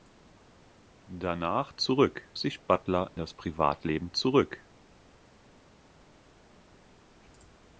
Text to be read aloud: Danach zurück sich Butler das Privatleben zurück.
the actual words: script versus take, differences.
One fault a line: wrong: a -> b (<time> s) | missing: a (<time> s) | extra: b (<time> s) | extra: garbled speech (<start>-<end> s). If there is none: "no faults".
no faults